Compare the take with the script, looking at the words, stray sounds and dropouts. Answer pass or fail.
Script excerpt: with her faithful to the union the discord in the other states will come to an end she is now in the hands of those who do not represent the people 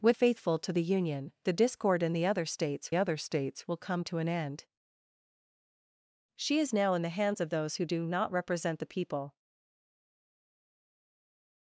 fail